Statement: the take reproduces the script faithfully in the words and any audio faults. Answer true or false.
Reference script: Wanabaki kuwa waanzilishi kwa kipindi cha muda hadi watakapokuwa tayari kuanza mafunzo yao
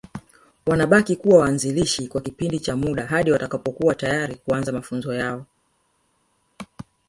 true